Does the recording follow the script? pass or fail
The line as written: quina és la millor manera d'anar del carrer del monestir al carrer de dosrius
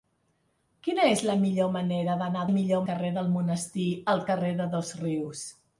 fail